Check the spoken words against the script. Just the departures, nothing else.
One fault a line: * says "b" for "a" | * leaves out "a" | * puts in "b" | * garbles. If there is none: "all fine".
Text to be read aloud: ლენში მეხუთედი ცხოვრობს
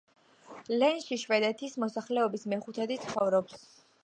* puts in "შვედეთის მოსახლეობის"